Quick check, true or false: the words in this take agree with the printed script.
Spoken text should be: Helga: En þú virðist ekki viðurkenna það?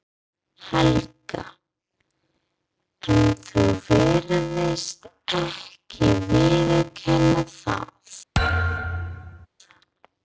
true